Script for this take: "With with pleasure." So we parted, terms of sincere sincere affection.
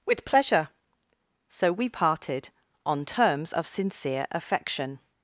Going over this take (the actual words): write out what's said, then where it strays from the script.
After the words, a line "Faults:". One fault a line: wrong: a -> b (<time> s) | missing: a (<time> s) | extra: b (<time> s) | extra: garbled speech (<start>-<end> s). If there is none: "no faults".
"With pleasure." So we parted, on terms of sincere affection.
Faults:
missing: with (0.2 s)
extra: on (2.9 s)
missing: sincere (4.3 s)